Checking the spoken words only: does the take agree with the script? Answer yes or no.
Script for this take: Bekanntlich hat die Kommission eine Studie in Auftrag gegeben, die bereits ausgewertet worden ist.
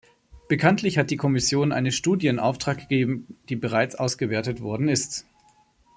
yes